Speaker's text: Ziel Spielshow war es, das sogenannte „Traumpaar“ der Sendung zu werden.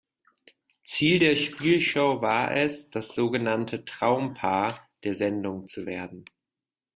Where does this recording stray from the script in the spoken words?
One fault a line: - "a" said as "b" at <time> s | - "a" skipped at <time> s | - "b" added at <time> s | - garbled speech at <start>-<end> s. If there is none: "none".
- "der" added at 1.2 s